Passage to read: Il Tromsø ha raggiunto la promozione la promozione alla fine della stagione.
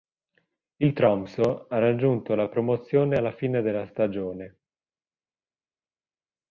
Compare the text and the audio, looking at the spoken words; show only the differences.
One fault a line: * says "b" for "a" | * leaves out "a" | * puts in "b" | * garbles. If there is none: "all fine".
* leaves out "la promozione"